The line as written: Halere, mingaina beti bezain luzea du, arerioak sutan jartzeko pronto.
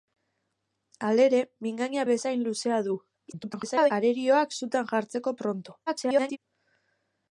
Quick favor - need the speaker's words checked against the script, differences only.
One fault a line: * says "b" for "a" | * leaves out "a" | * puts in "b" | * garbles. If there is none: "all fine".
* leaves out "beti"
* garbles
* garbles